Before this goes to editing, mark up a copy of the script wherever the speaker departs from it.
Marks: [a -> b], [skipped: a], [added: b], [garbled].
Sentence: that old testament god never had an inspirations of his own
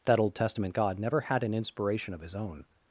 that old testament god never had an [inspirations -> inspiration] of his own